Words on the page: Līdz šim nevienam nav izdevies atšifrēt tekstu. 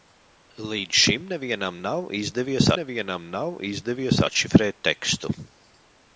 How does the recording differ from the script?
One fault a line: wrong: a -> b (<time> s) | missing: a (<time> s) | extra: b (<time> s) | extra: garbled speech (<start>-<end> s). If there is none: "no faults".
extra: nevienam nav izdevies (2.8 s)